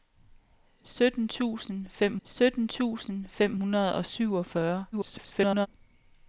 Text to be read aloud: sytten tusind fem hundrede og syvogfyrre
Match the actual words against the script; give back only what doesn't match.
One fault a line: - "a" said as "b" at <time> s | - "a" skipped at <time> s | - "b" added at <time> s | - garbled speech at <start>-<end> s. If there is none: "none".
- "sytten tusind fem" added at 2.2 s
- garbled speech at 4.9-5.7 s